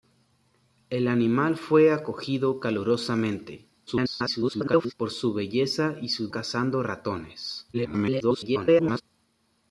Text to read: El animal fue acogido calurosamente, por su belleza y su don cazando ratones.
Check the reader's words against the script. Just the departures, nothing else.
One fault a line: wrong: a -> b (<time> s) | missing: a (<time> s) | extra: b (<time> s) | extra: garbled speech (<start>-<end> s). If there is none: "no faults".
extra: garbled speech (3.9-4.9 s)
missing: don (6.3 s)
extra: garbled speech (7.7-9.0 s)